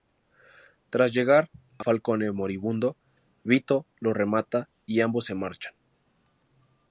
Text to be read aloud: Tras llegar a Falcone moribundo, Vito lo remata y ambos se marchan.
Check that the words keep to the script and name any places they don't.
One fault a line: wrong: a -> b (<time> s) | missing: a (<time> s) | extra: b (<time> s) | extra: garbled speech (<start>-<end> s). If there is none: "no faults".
no faults